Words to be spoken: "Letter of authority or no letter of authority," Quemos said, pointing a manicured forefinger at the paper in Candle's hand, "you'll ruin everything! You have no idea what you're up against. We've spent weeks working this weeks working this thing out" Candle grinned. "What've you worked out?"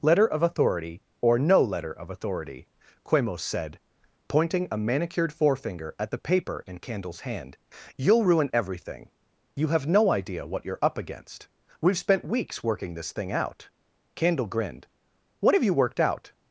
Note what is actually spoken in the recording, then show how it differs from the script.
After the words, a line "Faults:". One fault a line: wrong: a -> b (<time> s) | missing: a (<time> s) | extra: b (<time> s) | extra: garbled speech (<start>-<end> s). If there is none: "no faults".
"Letter of authority or no letter of authority," Quemos said, pointing a manicured forefinger at the paper in Candle's hand, "you'll ruin everything! You have no idea what you're up against. We've spent weeks working this thing out" Candle grinned. "What've you worked out?"
Faults:
missing: weeks working this (13.1 s)